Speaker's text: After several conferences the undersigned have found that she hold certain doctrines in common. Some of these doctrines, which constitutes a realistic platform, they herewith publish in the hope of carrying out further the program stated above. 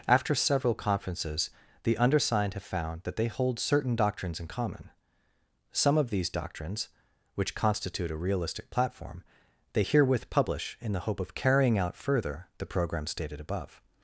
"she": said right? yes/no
no